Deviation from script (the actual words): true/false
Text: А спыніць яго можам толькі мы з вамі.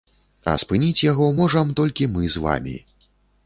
false